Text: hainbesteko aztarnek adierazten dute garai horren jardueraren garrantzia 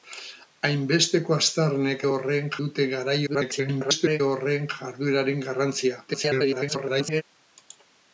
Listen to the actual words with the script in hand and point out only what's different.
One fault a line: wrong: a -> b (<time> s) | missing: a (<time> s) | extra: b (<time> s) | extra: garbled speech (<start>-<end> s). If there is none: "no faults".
wrong: adierazten -> horren (2.1 s)
extra: garbled speech (3.3-4.2 s)
extra: garbled speech (6.1-7.2 s)